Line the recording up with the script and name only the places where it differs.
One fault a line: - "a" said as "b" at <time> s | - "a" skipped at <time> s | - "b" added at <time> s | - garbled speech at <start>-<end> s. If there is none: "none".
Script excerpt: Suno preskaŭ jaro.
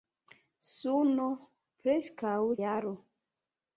none